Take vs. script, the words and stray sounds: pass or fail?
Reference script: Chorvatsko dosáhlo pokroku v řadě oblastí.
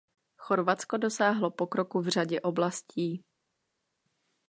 pass